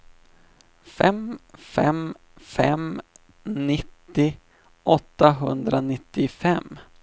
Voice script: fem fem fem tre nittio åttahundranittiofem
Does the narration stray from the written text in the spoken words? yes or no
yes